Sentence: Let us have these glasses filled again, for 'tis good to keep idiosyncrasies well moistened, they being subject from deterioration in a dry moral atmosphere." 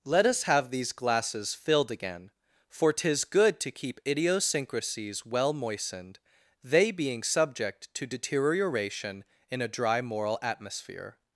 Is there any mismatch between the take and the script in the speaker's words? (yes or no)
yes